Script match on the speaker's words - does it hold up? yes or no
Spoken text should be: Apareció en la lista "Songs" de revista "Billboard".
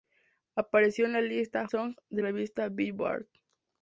yes